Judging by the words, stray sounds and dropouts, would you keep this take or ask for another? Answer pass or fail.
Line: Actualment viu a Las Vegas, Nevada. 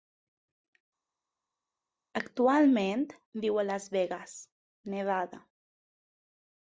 pass